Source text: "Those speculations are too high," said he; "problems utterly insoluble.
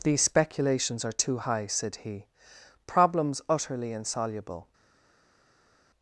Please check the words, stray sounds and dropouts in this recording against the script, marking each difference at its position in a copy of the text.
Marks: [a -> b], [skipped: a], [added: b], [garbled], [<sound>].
["Those -> These] speculations are too high," said he; "problems utterly insoluble.